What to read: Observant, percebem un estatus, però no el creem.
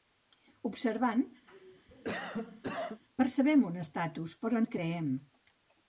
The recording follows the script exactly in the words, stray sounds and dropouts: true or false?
false